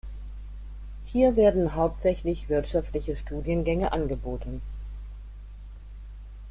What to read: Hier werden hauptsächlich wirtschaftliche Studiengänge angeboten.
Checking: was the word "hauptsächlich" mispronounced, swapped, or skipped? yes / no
no